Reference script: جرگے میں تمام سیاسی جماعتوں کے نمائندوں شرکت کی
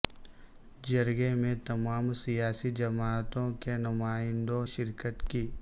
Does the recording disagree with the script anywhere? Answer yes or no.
no